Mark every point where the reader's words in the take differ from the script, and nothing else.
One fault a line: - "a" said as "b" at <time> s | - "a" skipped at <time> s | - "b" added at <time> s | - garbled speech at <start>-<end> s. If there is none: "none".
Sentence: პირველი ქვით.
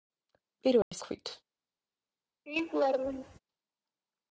none